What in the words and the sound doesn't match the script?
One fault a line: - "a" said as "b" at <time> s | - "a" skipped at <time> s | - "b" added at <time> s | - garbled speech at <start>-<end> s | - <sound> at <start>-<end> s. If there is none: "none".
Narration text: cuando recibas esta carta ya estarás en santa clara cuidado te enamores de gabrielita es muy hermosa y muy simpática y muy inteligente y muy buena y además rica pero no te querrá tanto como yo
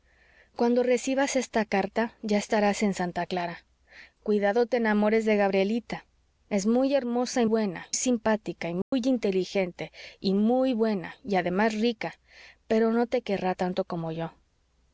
- "muy" said as "buena" at 7.5 s
- dropout at 8.8-8.9 s